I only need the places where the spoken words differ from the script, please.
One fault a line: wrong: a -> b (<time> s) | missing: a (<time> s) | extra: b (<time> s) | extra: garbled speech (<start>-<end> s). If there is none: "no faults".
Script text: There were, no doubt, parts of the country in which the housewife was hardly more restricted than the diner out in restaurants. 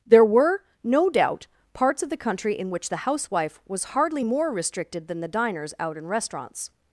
wrong: diner -> diners (5.3 s)